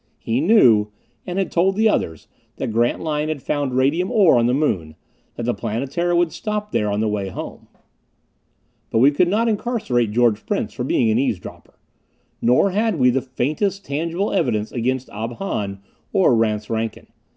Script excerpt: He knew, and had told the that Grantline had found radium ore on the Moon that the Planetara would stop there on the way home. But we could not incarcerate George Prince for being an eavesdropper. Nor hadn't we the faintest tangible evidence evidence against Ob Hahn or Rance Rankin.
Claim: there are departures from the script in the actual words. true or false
true